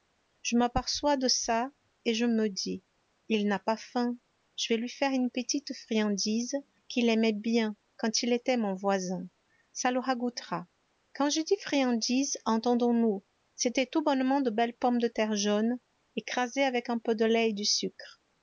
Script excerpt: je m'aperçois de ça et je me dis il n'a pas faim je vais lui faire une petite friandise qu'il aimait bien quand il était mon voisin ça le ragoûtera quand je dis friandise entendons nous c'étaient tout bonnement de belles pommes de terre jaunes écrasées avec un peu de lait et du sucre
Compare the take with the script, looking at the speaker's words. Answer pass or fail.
pass